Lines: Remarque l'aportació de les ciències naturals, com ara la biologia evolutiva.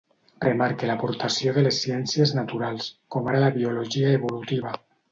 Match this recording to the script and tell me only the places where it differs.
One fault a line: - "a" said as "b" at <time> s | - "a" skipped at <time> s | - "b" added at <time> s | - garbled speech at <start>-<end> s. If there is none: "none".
none